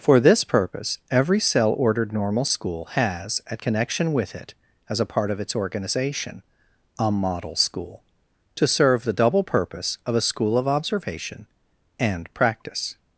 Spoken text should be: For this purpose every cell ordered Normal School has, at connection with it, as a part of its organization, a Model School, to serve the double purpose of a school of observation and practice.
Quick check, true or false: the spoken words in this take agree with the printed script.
true